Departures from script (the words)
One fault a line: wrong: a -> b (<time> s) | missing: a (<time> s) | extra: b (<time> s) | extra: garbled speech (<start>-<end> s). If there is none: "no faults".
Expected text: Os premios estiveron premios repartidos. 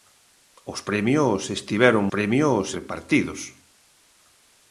no faults